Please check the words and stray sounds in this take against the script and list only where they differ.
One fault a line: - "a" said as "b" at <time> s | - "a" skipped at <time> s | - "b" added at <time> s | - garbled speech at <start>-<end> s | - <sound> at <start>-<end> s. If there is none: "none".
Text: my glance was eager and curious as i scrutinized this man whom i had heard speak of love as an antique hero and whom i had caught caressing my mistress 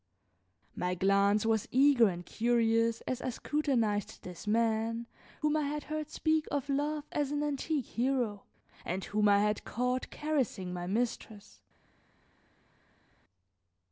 none